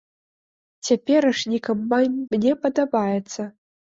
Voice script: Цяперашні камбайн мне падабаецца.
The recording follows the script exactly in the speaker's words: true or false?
true